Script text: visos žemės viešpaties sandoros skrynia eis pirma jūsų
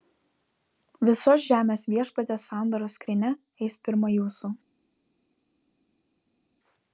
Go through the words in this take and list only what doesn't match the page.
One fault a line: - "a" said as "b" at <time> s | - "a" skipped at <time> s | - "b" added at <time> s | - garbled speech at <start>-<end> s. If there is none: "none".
none